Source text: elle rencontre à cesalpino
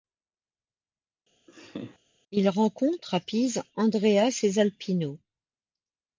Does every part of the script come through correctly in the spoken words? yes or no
no